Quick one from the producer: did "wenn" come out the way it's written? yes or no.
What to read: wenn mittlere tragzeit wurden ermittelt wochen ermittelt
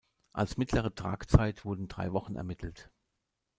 no